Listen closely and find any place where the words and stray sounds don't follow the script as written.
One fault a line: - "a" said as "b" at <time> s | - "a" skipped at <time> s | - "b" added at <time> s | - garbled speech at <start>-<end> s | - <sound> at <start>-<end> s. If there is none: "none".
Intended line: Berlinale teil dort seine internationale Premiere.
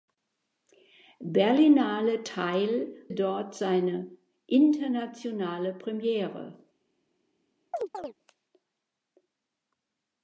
- chirp at 7.7-8.1 s